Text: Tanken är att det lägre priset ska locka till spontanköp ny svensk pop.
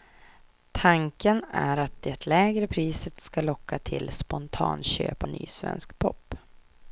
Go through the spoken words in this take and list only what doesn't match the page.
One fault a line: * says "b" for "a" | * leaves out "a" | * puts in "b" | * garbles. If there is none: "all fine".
all fine